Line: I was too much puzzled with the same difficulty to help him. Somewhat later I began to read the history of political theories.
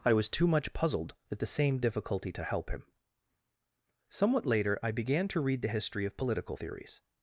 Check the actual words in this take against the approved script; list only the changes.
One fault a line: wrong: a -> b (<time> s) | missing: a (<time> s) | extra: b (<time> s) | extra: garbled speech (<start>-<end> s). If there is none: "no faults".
wrong: with -> at (1.3 s)